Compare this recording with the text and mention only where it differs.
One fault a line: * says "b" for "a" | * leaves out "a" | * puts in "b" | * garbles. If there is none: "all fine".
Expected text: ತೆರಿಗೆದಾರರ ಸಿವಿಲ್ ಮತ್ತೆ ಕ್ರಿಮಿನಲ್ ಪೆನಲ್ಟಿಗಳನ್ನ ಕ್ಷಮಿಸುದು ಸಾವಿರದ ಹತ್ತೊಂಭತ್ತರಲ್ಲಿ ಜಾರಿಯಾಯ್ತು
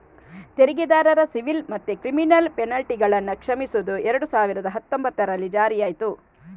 * puts in "ಎರಡು"